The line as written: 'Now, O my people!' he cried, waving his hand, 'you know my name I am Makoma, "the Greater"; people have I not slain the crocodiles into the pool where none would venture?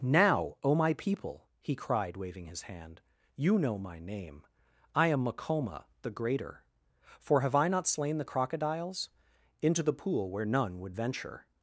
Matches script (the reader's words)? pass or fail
fail